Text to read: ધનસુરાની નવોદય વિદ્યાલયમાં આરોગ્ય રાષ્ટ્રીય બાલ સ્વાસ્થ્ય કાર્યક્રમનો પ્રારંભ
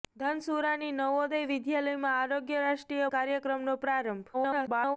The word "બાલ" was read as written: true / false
false